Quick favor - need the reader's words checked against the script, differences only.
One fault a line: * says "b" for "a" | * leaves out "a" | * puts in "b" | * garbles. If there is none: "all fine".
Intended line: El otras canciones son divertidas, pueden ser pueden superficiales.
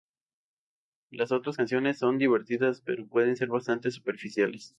* says "Las" for "El"
* puts in "pero"
* says "bastante" for "pueden"